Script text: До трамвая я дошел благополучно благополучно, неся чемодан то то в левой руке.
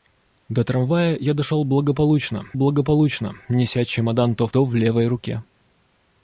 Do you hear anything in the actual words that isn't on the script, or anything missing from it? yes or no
no